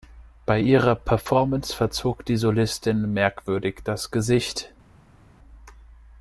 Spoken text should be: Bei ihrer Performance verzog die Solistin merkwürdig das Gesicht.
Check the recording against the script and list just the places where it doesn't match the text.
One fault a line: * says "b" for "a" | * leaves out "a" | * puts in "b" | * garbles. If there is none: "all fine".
all fine